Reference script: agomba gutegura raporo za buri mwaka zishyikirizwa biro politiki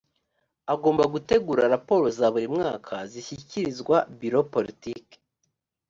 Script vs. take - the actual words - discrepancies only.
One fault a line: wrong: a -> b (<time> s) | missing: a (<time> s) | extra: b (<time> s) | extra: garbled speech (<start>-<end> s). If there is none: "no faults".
no faults